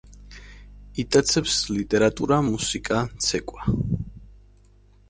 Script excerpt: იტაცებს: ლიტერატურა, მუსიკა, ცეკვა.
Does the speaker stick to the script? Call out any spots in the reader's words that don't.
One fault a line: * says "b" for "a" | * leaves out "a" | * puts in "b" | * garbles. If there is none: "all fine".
all fine